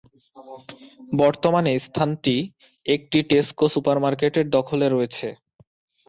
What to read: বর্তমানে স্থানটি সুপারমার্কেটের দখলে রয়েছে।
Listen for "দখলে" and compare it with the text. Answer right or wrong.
right